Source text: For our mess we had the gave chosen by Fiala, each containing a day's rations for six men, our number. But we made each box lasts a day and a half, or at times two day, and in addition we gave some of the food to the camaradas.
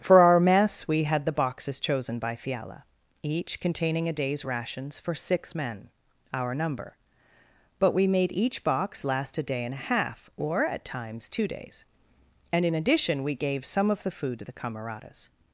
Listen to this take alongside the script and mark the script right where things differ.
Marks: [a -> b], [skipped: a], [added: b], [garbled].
For our mess we had the [gave -> boxes] chosen by Fiala, each containing a day's rations for six men, our number. But we made each box [lasts -> last] a day and a half, or at times two [day, -> days] and in addition we gave some of the food to the camaradas.